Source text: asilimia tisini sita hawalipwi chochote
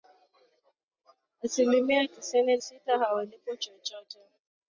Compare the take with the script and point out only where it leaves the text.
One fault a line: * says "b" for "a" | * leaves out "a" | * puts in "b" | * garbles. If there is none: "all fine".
all fine